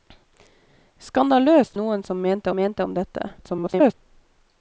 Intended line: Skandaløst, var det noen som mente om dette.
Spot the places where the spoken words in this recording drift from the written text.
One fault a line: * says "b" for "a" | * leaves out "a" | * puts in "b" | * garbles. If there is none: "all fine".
* leaves out "var det"
* puts in "mente"
* garbles